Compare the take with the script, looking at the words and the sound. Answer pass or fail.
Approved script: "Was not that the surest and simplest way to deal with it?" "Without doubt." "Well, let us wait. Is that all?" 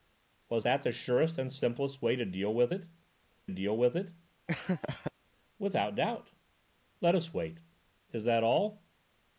fail